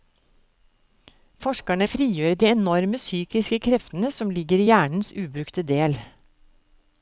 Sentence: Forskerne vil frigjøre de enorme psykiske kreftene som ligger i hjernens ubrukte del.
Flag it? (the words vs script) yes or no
yes